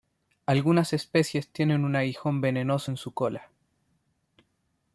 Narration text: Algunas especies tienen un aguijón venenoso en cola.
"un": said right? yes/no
yes